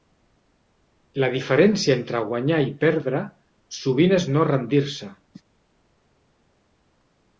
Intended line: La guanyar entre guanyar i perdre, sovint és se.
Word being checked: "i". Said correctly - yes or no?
yes